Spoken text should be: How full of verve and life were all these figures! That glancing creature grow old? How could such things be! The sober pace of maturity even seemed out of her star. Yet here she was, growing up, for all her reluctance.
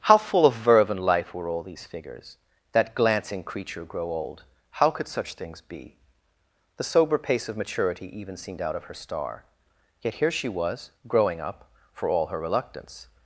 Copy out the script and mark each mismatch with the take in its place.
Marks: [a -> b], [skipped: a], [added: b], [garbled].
How full of verve and life were all these figures! That glancing creature grow old? How could such things be! The sober pace of maturity even seemed out of her star. Yet here she was, growing up, for all her reluctance.